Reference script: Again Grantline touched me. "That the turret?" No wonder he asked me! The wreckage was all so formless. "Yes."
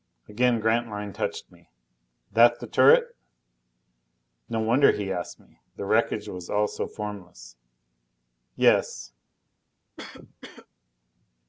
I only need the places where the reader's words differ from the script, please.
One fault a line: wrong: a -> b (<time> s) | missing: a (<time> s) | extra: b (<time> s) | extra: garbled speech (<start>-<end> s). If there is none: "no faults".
no faults